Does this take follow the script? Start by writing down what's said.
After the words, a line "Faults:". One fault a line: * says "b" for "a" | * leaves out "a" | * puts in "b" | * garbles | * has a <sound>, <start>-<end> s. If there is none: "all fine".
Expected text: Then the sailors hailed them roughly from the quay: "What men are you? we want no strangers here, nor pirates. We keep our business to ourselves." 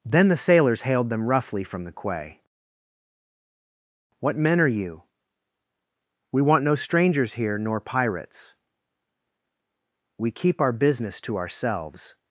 Then the sailors hailed them roughly from the quay: "What men are you? we want no strangers here, nor pirates. We keep our business to ourselves."
Faults:
all fine